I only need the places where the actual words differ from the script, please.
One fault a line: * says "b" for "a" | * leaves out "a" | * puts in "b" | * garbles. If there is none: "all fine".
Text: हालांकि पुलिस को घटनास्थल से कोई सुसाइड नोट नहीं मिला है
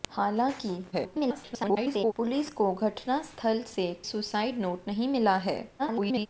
* garbles
* leaves out "कोई"
* garbles